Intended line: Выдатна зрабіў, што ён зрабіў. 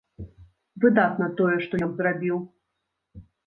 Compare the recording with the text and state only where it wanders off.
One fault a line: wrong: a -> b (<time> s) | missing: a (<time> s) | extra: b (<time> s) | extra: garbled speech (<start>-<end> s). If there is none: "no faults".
wrong: зрабіў -> тое (1.4 s)